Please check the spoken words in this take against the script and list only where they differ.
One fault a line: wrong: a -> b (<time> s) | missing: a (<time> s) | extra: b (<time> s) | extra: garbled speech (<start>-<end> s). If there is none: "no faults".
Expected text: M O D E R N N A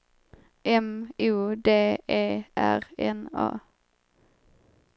missing: N (3.3 s)